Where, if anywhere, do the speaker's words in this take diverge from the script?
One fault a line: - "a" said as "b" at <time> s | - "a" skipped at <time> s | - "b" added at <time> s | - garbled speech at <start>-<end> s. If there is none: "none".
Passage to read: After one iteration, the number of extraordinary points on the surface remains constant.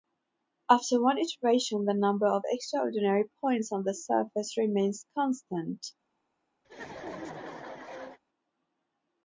none